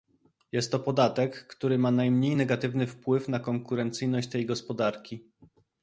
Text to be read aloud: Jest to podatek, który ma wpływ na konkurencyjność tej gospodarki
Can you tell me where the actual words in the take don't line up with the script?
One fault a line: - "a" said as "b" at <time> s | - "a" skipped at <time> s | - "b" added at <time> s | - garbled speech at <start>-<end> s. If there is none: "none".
- "najmniej negatywny" added at 1.9 s